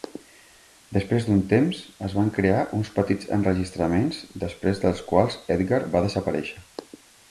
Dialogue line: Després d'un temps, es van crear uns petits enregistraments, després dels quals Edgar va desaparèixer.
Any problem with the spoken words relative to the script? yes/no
no